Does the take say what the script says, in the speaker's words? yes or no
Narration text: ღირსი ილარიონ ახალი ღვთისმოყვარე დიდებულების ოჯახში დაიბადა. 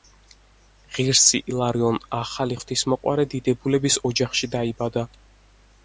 yes